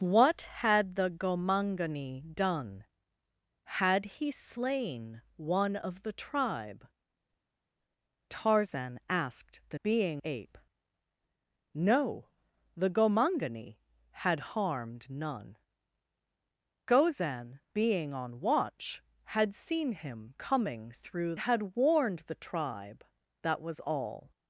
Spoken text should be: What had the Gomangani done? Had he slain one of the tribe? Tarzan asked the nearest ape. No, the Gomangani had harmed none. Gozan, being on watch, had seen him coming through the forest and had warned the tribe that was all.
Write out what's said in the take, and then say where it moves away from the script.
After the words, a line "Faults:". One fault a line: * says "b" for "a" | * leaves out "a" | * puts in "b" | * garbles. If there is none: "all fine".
What had the Gomangani done? Had he slain one of the tribe? Tarzan asked the being ape. No, the Gomangani had harmed none. Gozan, being on watch, had seen him coming through had warned the tribe that was all.
Faults:
* says "being" for "nearest"
* leaves out "the forest and"